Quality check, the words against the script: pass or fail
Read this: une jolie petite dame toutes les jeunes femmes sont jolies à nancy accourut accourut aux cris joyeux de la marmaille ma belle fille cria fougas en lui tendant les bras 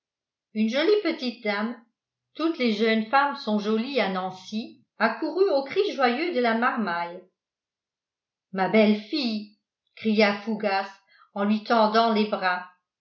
fail